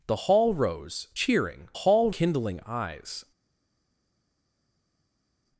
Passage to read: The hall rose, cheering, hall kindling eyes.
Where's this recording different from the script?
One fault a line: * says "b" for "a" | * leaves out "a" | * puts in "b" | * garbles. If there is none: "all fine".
all fine